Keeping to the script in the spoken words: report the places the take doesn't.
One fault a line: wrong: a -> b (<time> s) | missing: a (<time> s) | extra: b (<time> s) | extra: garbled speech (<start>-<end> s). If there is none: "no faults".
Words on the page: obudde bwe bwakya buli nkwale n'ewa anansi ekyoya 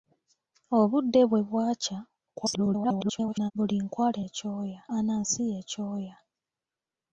extra: garbled speech (2.3-3.5 s)
wrong: n'ewa -> ekyoya (4.3 s)